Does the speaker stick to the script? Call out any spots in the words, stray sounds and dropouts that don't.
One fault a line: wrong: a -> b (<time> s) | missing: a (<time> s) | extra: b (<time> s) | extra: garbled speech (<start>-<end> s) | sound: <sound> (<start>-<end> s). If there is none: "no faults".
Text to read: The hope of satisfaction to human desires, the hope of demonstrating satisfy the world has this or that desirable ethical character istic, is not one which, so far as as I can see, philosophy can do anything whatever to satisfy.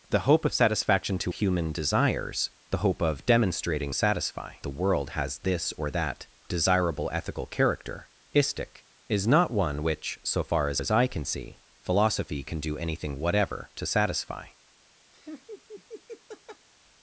sound: laugh (15.1-16.7 s)